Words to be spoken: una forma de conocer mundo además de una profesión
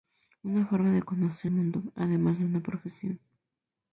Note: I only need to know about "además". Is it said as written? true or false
true